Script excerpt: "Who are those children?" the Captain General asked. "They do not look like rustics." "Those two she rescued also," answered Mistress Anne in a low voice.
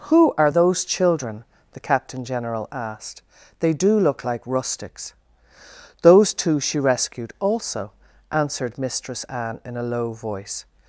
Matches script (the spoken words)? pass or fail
fail